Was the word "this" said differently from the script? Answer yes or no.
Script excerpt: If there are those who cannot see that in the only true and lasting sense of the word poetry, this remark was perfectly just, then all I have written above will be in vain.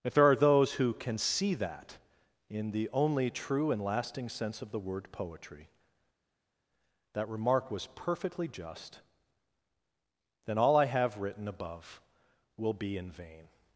yes